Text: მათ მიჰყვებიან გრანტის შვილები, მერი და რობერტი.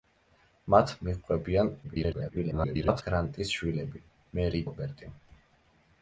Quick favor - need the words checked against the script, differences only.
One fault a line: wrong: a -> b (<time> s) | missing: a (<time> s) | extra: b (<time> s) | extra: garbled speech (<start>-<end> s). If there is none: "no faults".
extra: garbled speech (1.8-3.0 s)
missing: და (4.6 s)